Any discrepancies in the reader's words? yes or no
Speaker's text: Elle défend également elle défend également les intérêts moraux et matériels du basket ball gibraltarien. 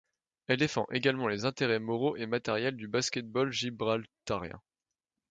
yes